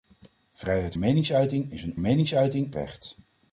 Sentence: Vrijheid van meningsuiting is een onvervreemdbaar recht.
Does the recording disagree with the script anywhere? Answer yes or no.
yes